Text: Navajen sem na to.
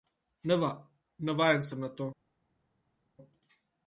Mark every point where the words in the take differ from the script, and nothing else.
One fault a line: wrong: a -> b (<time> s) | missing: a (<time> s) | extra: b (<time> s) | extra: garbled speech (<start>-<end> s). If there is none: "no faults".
no faults